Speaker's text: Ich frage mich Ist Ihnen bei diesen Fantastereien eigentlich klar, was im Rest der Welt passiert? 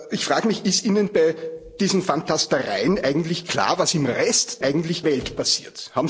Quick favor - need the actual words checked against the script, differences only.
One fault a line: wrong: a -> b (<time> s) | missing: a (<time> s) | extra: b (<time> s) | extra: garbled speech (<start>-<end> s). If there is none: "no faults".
wrong: der -> eigentlich (4.6 s)